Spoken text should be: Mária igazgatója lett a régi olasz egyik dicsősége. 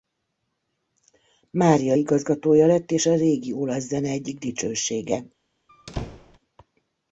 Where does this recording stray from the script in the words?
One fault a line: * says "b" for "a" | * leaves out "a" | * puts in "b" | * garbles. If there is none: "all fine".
* puts in "és"
* puts in "zene"